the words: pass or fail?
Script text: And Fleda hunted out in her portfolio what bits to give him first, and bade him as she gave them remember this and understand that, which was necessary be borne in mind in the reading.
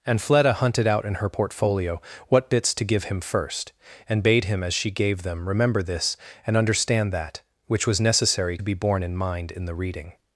pass